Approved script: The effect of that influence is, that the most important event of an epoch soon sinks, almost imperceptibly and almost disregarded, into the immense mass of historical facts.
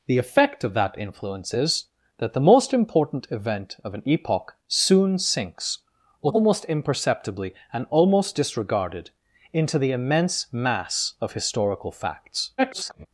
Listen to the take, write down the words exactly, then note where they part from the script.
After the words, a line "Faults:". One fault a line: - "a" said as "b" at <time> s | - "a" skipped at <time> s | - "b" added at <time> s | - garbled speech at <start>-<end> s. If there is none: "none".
The effect of that influence is, that the most important event of an epoch soon sinks, almost imperceptibly and almost disregarded, into the immense mass of historical facts. [garbled]
Faults:
- garbled speech at 12.6-13.1 s